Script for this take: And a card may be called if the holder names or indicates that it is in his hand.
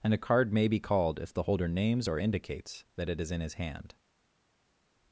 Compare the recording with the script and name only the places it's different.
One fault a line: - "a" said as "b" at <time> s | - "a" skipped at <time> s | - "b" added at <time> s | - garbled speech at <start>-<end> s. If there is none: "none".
none